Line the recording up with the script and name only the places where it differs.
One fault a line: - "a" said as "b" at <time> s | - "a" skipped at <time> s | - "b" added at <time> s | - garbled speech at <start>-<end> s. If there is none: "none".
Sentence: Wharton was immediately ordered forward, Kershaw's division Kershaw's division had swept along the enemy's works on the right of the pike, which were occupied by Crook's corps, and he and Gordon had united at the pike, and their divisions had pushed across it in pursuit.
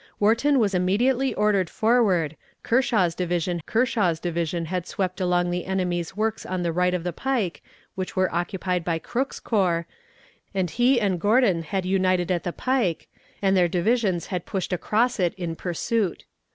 none